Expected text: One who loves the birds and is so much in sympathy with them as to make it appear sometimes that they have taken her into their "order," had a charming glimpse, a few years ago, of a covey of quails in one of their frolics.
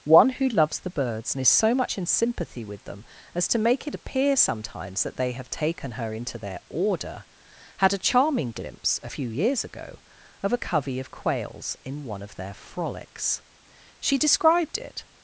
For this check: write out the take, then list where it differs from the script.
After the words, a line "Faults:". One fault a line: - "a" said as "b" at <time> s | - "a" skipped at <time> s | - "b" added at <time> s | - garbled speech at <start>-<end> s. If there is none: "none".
One who loves the birds and is so much in sympathy with them as to make it appear sometimes that they have taken her into their "order," had a charming glimpse, a few years ago, of a covey of quails in one of their frolics. She described it
Faults:
- "She described it" added at 14.0 s